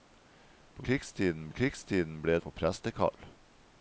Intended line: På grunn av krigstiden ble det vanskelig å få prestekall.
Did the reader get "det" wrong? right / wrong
wrong